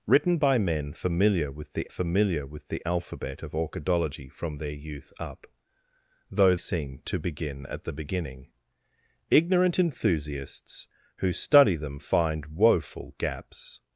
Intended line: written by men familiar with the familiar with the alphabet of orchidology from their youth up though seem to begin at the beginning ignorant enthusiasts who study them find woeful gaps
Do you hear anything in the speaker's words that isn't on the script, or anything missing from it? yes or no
no